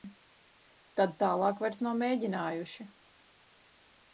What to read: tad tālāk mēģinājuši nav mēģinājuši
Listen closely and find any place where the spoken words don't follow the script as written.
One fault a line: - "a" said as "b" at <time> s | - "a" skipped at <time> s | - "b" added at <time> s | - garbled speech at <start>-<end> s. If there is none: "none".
- "mēģinājuši" said as "vairs" at 1.6 s